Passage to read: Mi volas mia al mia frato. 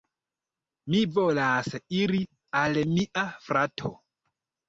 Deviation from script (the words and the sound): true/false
true